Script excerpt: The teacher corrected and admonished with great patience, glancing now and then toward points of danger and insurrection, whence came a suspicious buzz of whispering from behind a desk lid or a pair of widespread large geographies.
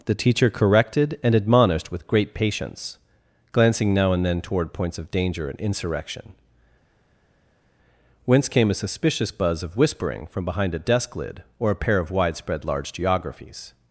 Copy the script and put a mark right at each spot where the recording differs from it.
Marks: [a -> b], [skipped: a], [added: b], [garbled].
The teacher corrected and admonished with great patience, glancing now and then toward points of danger and insurrection, whence came a suspicious buzz of whispering from behind a desk lid or a pair of widespread large geographies.